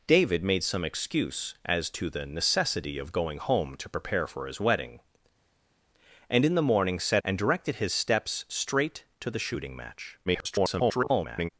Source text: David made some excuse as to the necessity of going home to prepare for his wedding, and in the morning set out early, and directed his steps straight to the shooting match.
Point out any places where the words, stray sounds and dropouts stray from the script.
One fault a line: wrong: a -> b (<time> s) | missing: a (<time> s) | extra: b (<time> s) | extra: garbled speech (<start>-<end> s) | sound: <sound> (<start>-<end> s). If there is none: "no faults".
missing: out early (7.2 s)
extra: garbled speech (10.3-11.5 s)